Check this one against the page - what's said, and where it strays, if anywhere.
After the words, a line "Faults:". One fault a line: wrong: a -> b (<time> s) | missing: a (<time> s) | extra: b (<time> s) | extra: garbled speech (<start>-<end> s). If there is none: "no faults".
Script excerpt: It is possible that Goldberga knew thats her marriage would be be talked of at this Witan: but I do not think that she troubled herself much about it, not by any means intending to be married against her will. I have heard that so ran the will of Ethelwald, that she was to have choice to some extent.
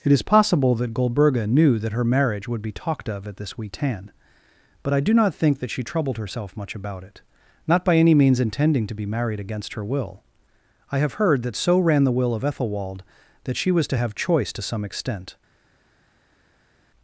It is possible that Goldberga knew that her marriage would be talked of at this Witan: but I do not think that she troubled herself much about it, not by any means intending to be married against her will. I have heard that so ran the will of Ethelwald, that she was to have choice to some extent.
Faults:
wrong: thats -> that (1.8 s)
missing: be (2.7 s)